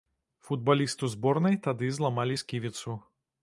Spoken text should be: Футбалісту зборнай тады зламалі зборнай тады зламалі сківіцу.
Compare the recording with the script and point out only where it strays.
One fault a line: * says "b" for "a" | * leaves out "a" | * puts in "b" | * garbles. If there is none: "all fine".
* leaves out "зборнай тады зламалі"